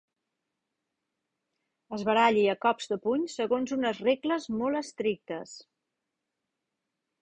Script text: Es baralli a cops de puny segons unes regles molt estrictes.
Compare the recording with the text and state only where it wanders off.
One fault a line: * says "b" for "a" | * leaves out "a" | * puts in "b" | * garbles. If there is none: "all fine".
all fine